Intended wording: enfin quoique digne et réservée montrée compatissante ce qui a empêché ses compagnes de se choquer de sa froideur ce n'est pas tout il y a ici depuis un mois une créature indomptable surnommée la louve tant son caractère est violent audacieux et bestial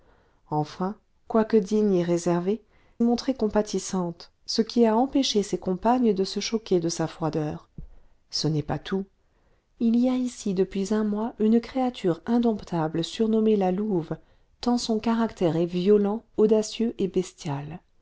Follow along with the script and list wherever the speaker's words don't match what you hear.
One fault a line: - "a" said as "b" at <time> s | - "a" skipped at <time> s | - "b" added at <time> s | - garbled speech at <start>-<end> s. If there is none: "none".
none